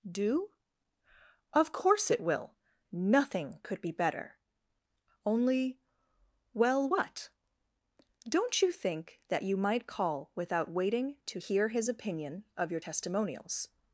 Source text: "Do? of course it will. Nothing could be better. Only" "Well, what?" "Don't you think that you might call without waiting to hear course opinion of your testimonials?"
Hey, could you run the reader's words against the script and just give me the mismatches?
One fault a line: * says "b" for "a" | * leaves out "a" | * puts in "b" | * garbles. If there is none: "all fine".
* says "his" for "course"